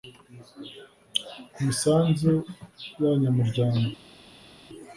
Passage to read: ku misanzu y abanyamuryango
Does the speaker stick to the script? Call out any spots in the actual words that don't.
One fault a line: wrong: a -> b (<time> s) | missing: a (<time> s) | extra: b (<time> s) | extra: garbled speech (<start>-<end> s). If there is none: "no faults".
no faults